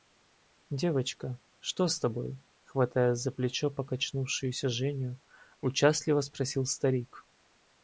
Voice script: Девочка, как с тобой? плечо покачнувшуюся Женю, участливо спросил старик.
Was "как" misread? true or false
true